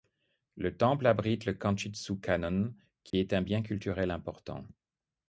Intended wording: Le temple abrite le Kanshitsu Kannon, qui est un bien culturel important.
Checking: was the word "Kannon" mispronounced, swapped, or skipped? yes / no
no